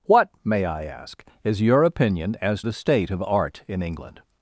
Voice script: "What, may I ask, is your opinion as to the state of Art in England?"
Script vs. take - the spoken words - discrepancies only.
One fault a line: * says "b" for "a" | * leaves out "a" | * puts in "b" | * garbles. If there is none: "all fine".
* leaves out "to"